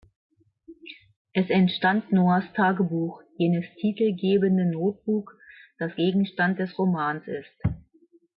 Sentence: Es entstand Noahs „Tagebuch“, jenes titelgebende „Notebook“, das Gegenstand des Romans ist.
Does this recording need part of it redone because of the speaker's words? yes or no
no